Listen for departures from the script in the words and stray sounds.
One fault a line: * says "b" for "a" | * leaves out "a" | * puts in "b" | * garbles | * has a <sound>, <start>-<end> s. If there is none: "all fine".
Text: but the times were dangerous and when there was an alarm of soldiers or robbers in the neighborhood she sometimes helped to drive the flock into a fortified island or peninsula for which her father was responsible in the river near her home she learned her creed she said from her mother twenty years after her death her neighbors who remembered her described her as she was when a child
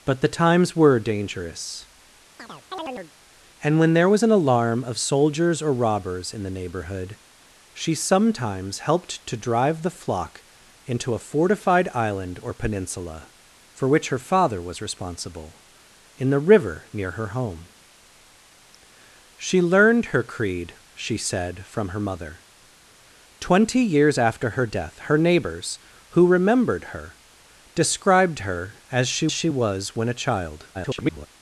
* has a chirp, 2.4-3.1 s
* puts in "she"
* garbles